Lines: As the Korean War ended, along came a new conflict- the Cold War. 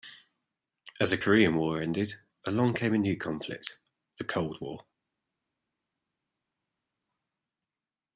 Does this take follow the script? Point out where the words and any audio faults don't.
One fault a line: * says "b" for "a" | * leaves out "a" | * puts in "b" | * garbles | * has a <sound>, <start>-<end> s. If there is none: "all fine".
all fine